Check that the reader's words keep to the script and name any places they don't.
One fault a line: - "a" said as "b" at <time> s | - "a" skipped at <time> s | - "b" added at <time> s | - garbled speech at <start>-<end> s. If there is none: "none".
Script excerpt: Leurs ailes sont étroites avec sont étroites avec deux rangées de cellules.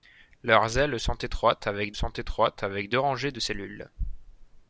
none